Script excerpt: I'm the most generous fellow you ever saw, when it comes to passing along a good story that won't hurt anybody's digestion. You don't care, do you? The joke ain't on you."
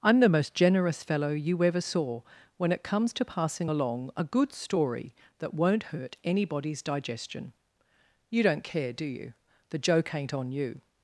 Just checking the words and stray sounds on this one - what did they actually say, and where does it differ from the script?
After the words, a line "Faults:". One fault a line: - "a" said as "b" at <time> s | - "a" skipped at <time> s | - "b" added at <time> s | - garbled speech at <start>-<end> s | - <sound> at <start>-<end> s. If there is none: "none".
I'm the most generous fellow you ever saw, when it comes to passing along a good story that won't hurt anybody's digestion. You don't care, do you? The joke ain't on you."
Faults:
none